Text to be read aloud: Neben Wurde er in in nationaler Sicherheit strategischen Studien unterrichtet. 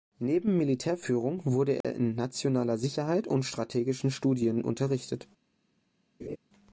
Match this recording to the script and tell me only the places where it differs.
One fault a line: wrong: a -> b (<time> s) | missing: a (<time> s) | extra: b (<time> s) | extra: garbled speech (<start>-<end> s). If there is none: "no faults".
extra: Militärführung (0.6 s)
missing: in (2.1 s)
extra: und (3.3 s)